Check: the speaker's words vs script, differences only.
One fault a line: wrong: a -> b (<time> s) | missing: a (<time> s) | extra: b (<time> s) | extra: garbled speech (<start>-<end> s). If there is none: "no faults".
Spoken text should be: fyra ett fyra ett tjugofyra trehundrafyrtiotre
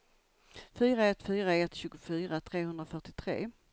no faults